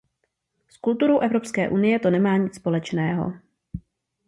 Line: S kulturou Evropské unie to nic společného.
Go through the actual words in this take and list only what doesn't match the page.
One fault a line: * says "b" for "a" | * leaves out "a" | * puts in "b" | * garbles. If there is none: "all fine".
* puts in "nemá"